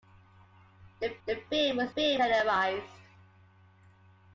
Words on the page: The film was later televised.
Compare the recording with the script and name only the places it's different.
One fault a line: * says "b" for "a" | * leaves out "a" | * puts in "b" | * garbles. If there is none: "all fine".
* puts in "the"
* says "film" for "later"